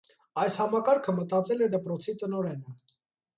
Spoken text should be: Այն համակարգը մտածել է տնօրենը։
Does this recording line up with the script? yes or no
no